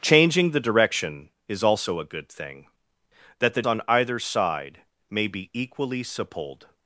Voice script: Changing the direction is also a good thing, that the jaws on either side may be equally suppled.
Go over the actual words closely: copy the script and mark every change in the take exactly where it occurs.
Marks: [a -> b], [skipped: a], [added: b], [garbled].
Changing the direction is also a good thing, that the [skipped: jaws] on either side may be equally suppled.